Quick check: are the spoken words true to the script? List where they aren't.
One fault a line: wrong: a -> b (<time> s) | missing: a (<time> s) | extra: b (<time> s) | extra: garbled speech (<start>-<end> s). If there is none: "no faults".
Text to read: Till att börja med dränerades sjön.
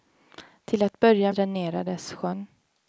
missing: med (1.3 s)